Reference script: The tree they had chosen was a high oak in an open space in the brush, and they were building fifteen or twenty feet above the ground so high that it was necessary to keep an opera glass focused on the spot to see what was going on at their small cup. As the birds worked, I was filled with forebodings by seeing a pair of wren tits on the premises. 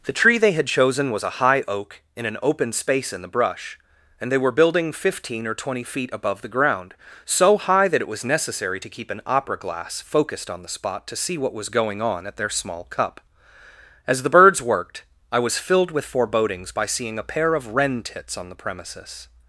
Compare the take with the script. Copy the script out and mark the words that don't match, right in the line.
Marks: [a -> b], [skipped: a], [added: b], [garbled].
The tree they had chosen was a high oak in an open space in the brush, and they were building fifteen or twenty feet above the ground so high that it was necessary to keep an opera glass focused on the spot to see what was going on at their small cup. As the birds worked, I was filled with forebodings by seeing a pair of wren tits on the premises.